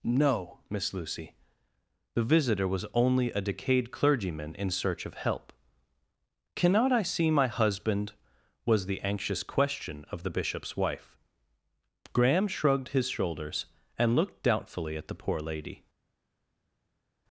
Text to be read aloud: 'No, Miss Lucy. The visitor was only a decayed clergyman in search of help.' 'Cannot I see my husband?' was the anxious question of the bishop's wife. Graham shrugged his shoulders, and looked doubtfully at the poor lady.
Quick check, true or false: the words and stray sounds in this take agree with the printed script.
true